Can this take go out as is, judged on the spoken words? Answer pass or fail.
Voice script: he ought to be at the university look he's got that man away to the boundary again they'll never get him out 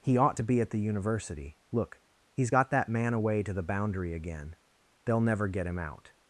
pass